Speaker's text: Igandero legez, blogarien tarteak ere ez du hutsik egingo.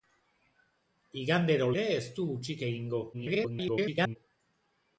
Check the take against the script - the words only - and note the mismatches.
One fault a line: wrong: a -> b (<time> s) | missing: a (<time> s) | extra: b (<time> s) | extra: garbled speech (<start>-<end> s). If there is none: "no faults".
missing: legez blogarien tarteak (1.7 s)
extra: garbled speech (3.1-4.2 s)